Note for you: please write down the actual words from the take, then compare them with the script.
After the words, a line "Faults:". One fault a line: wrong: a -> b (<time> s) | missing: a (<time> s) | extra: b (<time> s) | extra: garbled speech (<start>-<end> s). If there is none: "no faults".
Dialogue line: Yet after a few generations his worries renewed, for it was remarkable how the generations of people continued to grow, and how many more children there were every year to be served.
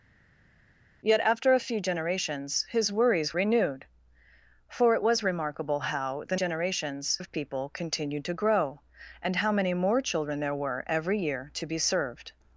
Yet after a few generations his worries renewed, for it was remarkable how the generations of people continued to grow, and how many more children there were every year to be served.
Faults:
no faults